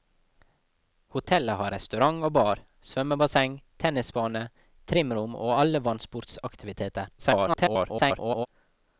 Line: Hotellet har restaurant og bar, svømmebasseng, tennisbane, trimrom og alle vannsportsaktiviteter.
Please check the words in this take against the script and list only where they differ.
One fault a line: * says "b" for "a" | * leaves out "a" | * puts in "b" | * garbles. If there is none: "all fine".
* garbles